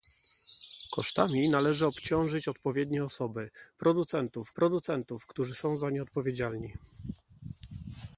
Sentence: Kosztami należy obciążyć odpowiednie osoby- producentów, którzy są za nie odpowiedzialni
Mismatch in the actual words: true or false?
true